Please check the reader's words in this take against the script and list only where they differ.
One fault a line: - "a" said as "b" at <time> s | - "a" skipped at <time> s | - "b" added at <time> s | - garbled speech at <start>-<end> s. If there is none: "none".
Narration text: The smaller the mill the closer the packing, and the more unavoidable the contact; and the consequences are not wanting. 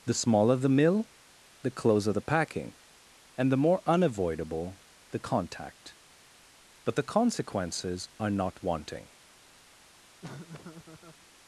- "and" said as "but" at 6.8 s